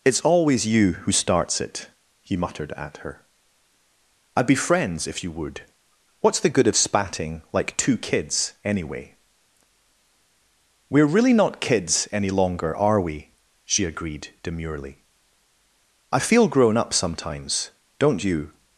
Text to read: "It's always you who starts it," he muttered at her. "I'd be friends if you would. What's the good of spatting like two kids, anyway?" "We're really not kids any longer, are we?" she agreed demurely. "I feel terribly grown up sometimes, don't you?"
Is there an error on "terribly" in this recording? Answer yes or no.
yes